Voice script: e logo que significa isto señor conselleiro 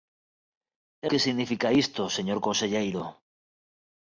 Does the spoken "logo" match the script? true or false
false